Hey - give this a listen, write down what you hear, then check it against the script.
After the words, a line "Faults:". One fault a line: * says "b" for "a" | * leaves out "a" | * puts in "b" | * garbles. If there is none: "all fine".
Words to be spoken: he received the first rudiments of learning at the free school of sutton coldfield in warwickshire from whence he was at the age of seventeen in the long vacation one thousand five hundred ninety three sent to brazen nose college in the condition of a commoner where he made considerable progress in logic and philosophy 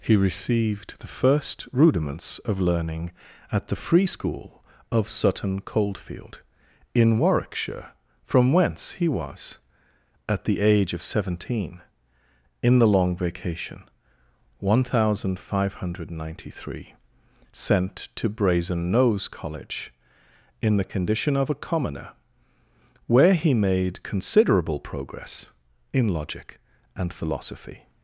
he received the first rudiments of learning at the free school of sutton coldfield in warwickshire from whence he was at the age of seventeen in the long vacation one thousand five hundred ninety three sent to brazen nose college in the condition of a commoner where he made considerable progress in logic and philosophy
Faults:
all fine